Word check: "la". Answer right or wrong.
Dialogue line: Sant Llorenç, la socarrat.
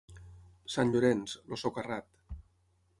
wrong